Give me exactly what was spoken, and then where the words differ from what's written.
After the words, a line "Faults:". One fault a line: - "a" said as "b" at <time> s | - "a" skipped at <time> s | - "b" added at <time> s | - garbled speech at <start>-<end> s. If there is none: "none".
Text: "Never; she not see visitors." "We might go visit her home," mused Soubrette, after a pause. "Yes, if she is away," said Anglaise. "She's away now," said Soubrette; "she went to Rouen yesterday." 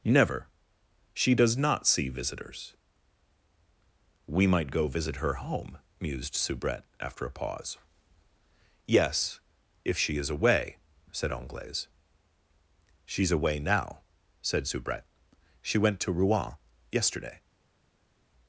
"Never; she does not see visitors." "We might go visit her home," mused Soubrette, after a pause. "Yes, if she is away," said Anglaise. "She's away now," said Soubrette; "she went to Rouen yesterday."
Faults:
- "does" added at 1.4 s